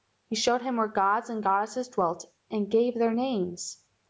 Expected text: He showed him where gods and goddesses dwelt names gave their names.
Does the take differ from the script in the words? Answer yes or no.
yes